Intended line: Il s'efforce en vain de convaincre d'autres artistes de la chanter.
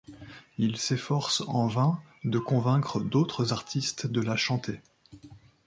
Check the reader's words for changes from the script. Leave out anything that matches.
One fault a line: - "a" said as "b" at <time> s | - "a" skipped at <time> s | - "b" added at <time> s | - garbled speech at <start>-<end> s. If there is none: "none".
none